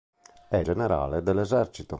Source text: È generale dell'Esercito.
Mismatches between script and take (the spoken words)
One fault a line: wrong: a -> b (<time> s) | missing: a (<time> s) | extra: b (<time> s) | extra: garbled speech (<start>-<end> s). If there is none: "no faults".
no faults